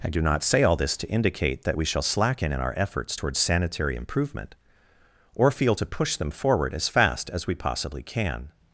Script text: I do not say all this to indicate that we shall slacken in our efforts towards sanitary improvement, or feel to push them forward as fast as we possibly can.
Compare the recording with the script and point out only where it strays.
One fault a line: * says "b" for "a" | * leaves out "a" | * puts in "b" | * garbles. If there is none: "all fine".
all fine